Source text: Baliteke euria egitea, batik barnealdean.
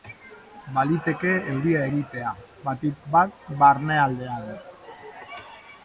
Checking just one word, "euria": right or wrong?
right